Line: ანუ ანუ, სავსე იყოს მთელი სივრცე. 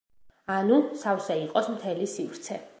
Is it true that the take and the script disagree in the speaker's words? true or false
true